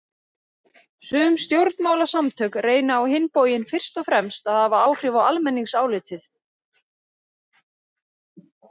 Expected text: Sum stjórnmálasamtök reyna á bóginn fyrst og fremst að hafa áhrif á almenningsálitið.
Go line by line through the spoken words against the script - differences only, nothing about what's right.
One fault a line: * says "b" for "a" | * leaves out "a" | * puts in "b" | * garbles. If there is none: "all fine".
* puts in "hinn"